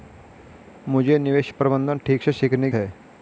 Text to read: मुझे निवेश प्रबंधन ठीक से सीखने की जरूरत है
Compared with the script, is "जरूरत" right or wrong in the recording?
wrong